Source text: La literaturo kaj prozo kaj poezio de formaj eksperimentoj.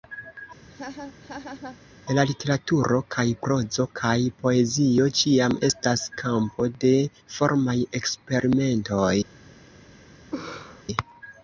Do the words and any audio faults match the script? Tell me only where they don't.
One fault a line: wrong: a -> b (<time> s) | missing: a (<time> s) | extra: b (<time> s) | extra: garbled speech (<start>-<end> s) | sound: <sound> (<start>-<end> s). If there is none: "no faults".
sound: laugh (0.7-1.8 s)
extra: ĉiam estas kampo (5.2 s)
sound: laugh (10.3-10.8 s)